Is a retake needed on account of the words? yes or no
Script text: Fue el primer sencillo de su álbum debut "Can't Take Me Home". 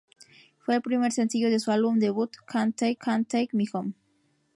yes